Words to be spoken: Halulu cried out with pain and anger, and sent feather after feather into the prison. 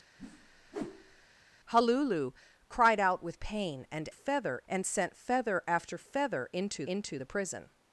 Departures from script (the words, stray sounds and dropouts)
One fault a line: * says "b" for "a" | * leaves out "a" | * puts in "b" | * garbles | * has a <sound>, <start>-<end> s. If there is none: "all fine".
* has a whoosh, 0.2-1.3 s
* says "feather" for "anger"
* puts in "into"